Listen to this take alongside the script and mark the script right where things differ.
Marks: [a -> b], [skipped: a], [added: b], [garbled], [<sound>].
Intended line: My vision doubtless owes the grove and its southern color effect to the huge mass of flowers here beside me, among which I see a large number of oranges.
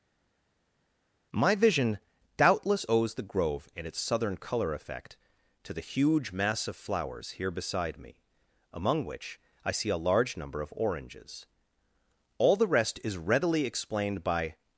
My vision doubtless owes the grove and its southern color effect to the huge mass of flowers here beside me, among which I see a large number of oranges. [added: All the rest is readily explained by]